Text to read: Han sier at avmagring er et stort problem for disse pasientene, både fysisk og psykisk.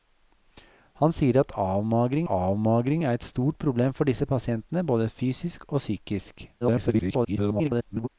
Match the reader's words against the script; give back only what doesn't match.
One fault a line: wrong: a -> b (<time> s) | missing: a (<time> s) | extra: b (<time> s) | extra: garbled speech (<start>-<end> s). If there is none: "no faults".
extra: avmagring (2.3 s)
extra: garbled speech (6.6-8.1 s)